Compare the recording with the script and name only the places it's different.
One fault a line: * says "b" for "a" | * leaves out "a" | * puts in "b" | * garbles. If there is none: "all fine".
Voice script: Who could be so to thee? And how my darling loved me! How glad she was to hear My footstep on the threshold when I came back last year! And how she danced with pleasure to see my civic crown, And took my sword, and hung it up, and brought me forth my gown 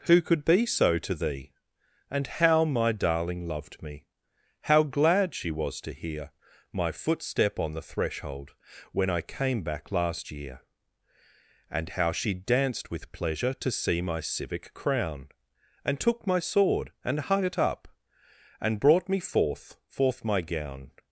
* puts in "forth"